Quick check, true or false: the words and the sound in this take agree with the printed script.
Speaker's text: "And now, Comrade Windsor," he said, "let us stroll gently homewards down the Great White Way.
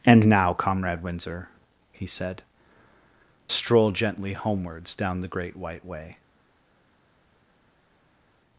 false